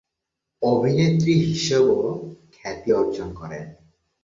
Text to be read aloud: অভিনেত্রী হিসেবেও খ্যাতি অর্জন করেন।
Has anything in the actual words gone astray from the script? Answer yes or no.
no